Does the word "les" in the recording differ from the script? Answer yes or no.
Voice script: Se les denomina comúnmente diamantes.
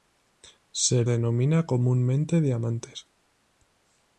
yes